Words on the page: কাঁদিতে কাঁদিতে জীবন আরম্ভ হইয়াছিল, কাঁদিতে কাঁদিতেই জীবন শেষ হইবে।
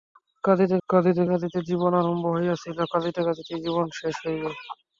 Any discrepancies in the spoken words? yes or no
yes